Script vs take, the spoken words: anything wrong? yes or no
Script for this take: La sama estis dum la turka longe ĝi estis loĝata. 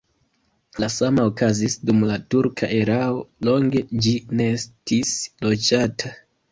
yes